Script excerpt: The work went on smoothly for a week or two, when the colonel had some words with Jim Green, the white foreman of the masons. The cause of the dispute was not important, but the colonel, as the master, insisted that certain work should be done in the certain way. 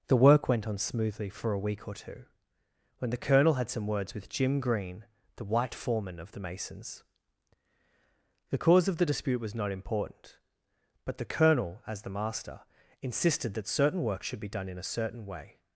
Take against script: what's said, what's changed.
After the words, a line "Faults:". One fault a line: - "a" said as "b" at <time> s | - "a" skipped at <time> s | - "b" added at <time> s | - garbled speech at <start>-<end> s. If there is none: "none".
The work went on smoothly for a week or two, when the colonel had some words with Jim Green, the white foreman of the masons. The cause of the dispute was not important, but the colonel, as the master, insisted that certain work should be done in a certain way.
Faults:
- "the" said as "a" at 14.8 s